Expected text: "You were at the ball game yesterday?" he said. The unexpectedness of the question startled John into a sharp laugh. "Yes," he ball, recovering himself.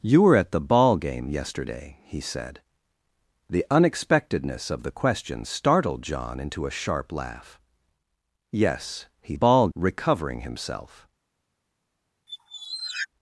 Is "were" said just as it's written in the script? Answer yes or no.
yes